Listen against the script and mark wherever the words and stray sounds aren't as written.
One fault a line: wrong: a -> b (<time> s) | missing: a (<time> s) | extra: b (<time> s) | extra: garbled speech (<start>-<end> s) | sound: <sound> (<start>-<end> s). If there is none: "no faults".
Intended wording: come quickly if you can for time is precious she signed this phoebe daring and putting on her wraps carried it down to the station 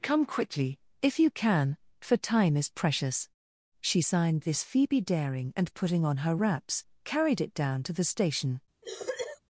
sound: cough (8.8-9.4 s)